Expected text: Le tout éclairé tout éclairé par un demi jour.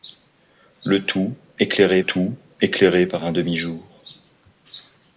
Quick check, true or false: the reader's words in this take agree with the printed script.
true